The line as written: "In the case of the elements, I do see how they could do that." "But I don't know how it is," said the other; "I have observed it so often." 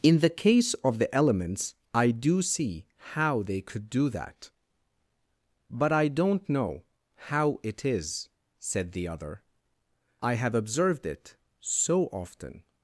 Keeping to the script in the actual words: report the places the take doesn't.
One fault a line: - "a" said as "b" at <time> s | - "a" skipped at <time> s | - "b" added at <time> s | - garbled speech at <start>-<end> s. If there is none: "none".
none